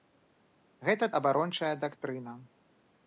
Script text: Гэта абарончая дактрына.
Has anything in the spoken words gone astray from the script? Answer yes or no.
no